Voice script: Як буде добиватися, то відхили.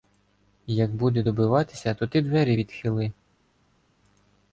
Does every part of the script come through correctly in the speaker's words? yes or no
no